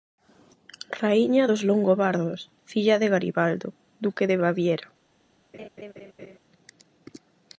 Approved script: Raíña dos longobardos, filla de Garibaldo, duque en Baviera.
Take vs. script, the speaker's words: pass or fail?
fail